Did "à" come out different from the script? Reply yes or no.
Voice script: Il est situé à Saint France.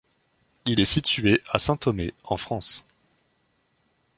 no